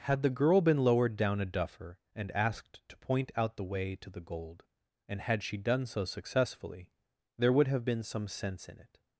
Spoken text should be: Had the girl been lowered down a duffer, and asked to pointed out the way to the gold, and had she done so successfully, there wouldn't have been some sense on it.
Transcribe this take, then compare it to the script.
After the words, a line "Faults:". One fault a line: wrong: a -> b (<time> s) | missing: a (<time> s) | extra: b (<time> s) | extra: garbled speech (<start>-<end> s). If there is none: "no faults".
Had the girl been lowered down a duffer, and asked to point out the way to the gold, and had she done so successfully, there would have been some sense in it.
Faults:
wrong: pointed -> point (3.0 s)
wrong: wouldn't -> would (7.5 s)
wrong: on -> in (8.7 s)